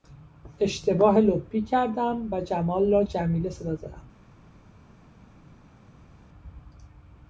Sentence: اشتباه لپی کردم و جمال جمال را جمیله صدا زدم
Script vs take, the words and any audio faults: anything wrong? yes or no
yes